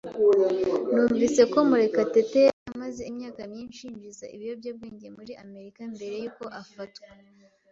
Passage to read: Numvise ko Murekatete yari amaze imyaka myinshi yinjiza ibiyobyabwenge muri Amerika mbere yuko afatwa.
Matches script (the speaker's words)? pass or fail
pass